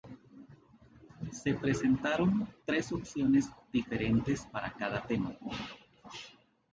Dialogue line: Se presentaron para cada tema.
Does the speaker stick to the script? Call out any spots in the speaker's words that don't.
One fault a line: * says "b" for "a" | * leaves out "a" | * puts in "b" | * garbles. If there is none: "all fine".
* puts in "tres opciones diferentes"